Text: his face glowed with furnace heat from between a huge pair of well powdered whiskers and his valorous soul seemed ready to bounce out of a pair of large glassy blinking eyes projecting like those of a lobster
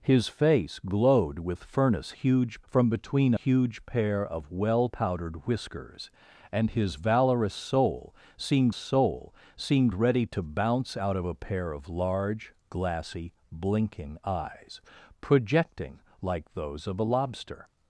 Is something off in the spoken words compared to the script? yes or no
yes